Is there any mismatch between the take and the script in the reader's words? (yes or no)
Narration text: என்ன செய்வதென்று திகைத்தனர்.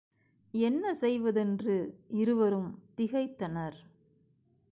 yes